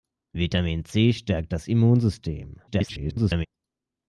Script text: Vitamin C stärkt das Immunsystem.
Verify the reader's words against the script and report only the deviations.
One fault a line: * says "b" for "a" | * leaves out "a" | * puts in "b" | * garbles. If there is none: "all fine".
* garbles